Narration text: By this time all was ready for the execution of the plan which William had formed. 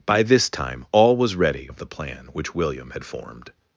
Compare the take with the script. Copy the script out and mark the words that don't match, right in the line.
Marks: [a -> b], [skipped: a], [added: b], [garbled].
By this time all was ready [skipped: for the execution] of the plan which William had formed.